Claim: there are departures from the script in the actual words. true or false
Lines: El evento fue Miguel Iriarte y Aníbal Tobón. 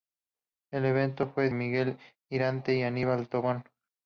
false